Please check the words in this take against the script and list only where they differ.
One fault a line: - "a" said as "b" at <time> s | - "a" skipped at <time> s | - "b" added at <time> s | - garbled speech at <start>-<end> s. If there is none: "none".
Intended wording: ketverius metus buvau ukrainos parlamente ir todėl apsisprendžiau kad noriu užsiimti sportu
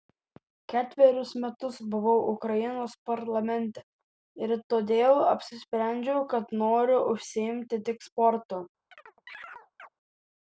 - "tik" added at 7.9 s